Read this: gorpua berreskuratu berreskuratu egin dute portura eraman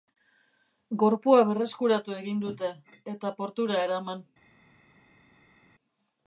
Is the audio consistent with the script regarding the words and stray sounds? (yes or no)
no